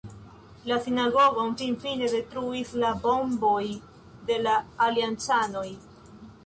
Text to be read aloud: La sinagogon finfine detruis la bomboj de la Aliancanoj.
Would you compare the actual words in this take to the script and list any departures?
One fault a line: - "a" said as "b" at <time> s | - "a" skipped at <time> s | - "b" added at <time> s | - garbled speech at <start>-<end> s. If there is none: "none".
none